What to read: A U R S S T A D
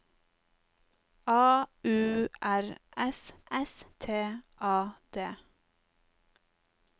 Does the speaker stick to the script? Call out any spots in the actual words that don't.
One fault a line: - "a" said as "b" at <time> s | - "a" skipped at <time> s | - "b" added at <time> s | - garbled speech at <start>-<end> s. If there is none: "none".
none